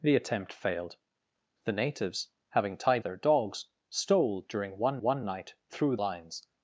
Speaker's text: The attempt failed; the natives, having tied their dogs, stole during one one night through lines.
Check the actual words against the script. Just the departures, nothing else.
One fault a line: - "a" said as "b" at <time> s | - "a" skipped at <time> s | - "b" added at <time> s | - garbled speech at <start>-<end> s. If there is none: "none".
none